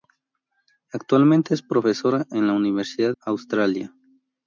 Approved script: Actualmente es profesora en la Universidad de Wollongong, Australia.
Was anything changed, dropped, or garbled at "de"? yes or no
yes